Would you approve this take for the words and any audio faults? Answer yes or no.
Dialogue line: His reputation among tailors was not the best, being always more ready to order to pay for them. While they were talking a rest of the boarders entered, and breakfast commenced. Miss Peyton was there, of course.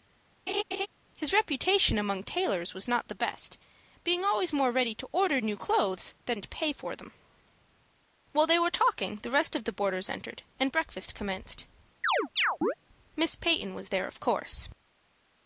no